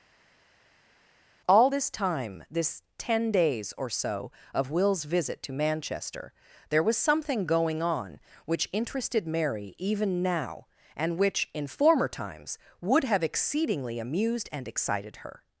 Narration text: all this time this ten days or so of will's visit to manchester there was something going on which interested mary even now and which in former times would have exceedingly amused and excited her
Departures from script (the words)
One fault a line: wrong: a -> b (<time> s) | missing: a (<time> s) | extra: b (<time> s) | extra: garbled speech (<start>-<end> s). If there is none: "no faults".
no faults